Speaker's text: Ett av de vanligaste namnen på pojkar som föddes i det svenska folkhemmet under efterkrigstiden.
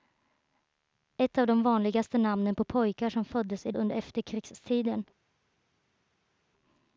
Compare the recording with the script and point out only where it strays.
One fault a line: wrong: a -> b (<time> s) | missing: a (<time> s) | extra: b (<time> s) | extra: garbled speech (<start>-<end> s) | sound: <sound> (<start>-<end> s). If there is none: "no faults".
missing: det svenska folkhemmet (3.7 s)